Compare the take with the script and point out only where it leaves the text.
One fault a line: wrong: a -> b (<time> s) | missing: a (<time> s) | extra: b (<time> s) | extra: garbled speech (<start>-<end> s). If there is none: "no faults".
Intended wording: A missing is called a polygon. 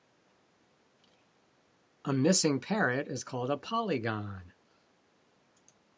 extra: parrot (2.6 s)